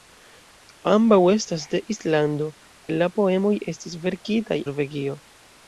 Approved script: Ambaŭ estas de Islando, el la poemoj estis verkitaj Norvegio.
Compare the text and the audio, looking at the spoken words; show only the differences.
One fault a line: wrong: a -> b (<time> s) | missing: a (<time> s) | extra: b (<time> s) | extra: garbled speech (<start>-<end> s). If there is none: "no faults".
no faults